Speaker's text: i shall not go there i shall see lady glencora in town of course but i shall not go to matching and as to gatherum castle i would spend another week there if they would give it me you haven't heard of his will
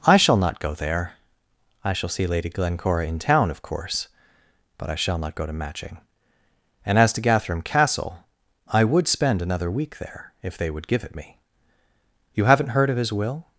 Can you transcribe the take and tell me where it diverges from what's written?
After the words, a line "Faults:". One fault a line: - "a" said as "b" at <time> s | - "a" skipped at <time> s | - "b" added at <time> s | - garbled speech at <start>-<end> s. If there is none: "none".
i shall not go there i shall see lady glencora in town of course but i shall not go to matching and as to gatherum castle i would spend another week there if they would give it me you haven't heard of his will
Faults:
none